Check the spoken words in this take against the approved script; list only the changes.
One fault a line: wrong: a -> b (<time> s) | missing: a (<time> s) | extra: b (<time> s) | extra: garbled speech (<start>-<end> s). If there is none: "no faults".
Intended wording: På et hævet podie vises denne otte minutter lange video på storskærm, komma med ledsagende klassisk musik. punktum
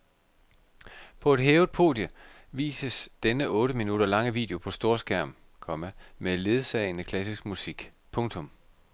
no faults